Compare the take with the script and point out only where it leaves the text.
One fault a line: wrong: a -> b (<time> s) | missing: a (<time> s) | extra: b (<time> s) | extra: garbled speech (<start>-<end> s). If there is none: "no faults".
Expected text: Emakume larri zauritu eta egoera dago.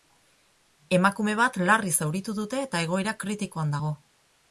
extra: bat (1.4 s)
extra: dute (2.4 s)
extra: kritikoan (3.3 s)